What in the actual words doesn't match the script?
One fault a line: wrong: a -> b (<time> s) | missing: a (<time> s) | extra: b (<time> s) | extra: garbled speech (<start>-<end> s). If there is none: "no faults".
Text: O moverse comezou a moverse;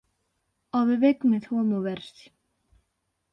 wrong: moverse -> bebé (0.9 s)